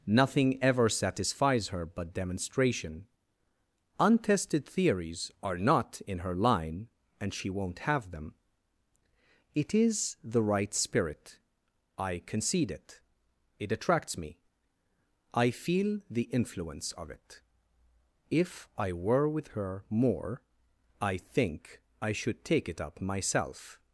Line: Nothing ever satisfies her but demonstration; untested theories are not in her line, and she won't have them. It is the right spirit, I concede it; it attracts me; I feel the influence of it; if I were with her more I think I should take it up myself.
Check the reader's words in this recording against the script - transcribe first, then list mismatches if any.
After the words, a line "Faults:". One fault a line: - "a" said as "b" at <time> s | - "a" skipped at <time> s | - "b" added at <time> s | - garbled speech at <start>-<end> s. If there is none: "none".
Nothing ever satisfies her but demonstration; untested theories are not in her line, and she won't have them. It is the right spirit, I concede it; it attracts me; I feel the influence of it; if I were with her more I think I should take it up myself.
Faults:
none